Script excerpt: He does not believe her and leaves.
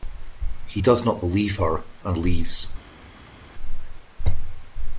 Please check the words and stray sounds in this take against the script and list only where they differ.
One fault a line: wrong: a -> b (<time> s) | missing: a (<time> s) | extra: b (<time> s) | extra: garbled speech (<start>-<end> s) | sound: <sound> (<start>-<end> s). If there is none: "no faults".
no faults